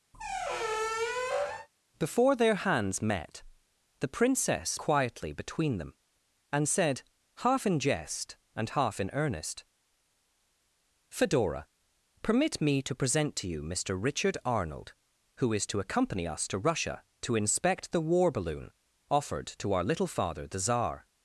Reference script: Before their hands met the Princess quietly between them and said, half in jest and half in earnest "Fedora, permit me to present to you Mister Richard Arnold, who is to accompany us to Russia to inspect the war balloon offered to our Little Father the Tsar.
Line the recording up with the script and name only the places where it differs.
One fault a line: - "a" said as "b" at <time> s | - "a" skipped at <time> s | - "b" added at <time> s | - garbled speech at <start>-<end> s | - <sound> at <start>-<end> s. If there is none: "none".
- squeak at 0.1-1.7 s